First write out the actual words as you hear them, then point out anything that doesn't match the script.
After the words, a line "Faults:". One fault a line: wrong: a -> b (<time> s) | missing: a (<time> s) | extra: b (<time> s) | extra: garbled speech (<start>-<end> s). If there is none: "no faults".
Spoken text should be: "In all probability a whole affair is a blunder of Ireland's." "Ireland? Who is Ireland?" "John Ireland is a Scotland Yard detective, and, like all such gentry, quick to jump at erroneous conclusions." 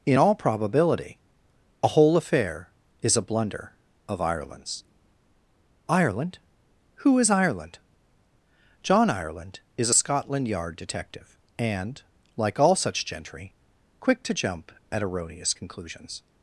"In all probability a whole affair is a blunder of Ireland's." "Ireland? Who is Ireland?" "John Ireland is a Scotland Yard detective, and, like all such gentry, quick to jump at erroneous conclusions."
Faults:
no faults